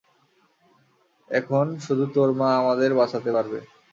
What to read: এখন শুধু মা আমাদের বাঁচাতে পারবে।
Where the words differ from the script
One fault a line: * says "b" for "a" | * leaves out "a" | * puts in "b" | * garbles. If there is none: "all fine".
* puts in "তোর"